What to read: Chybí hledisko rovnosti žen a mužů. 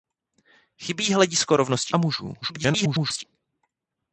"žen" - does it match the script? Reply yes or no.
no